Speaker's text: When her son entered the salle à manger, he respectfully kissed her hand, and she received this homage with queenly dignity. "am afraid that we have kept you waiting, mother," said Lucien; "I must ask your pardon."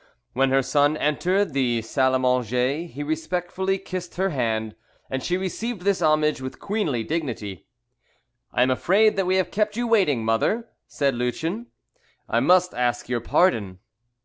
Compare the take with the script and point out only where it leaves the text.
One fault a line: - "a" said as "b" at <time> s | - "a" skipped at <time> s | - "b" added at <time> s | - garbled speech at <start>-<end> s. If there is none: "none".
- "I" added at 8.5 s